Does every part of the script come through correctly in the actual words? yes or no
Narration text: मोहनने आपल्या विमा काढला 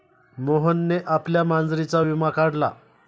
no